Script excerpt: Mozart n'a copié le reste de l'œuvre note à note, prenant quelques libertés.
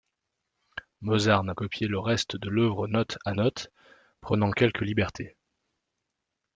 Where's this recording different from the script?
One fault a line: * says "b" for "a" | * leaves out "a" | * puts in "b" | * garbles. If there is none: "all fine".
all fine